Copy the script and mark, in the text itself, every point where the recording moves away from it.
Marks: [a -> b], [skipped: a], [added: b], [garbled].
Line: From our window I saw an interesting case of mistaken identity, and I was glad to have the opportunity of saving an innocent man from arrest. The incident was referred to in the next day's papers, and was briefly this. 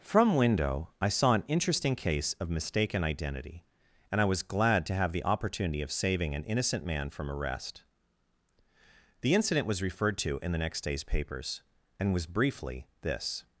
From [skipped: our] window I saw an interesting case of mistaken identity, and I was glad to have the opportunity of saving an innocent man from arrest. The incident was referred to in the next day's papers, and was briefly this.